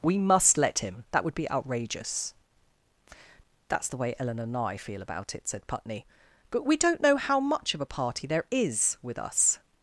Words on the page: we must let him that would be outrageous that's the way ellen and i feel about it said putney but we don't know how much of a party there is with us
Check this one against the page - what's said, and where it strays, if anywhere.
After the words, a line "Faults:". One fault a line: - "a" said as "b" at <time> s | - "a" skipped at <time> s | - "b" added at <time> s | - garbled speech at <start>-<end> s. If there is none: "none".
we must let him that would be outrageous that's the way ellen and i feel about it said putney but we don't know how much of a party there is with us
Faults:
none